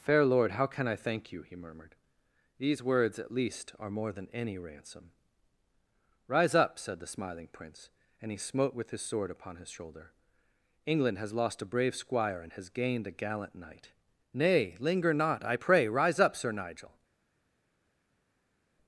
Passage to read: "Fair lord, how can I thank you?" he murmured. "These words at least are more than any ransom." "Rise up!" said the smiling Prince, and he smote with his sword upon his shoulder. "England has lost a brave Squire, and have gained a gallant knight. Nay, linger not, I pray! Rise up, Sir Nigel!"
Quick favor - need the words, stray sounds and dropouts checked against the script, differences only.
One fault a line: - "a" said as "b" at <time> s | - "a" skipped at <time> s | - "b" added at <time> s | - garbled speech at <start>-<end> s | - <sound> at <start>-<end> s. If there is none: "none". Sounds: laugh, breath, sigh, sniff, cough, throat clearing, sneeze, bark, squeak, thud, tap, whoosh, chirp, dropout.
- "have" said as "has" at 12.5 s